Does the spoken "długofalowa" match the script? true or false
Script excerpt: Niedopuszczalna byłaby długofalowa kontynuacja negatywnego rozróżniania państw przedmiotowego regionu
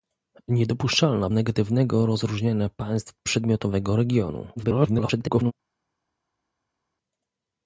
false